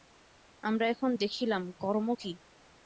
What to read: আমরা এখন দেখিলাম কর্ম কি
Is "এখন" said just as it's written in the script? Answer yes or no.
yes